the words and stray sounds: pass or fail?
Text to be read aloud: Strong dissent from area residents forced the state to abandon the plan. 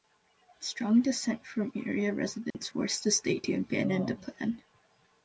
fail